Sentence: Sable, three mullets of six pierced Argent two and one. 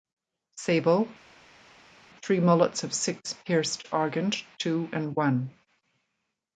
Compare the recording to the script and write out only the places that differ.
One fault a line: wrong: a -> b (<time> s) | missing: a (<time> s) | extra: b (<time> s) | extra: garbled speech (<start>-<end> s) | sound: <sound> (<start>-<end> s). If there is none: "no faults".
no faults